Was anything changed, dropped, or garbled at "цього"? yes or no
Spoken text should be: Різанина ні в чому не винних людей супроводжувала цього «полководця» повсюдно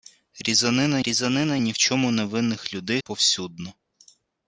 yes